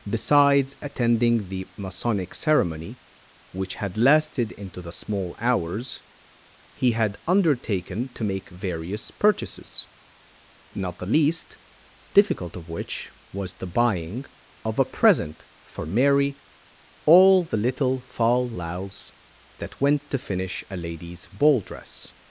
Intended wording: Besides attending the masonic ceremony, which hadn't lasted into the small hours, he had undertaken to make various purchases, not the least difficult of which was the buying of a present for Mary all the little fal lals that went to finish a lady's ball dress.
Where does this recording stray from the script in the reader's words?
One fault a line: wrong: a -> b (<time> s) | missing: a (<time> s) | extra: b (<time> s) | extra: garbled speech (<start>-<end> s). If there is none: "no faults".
wrong: hadn't -> had (3.8 s)